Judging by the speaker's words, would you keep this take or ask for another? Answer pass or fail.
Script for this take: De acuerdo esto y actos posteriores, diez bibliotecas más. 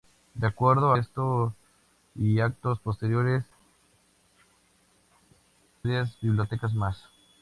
pass